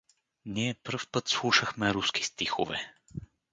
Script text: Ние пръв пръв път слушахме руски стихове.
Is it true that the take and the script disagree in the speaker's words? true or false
true